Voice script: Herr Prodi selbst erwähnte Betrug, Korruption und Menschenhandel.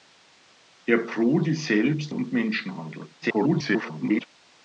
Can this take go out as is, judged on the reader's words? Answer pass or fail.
fail